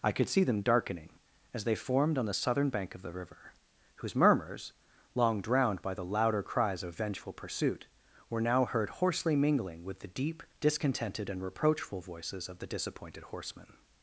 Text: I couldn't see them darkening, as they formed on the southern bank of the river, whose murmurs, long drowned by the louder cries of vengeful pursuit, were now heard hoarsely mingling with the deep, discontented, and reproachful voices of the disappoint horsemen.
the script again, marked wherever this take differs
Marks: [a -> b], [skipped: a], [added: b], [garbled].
I [couldn't -> could] see them darkening, as they formed on the southern bank of the river, whose murmurs, long drowned by the louder cries of vengeful pursuit, were now heard hoarsely mingling with the deep, discontented, and reproachful voices of the [disappoint -> disappointed] horsemen.